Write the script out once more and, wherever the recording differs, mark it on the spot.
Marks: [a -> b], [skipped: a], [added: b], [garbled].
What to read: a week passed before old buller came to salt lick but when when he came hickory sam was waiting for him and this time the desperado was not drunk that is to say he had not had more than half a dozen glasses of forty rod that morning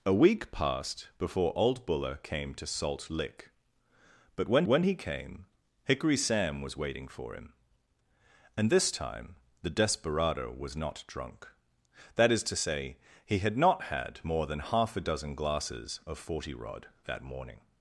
a week passed before old buller came to salt lick but when when he came hickory sam was waiting for him and this time the desperado was not drunk that is to say he had not had more than half a dozen glasses of forty rod that morning